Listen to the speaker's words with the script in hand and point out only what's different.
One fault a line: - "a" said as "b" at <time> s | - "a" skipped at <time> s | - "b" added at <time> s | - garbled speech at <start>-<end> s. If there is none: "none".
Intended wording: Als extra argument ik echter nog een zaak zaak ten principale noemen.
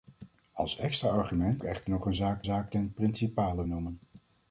none